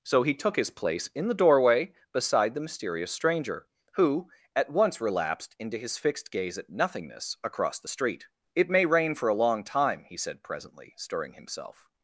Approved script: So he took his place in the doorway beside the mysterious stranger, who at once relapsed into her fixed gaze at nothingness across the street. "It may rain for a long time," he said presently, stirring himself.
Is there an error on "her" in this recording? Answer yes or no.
yes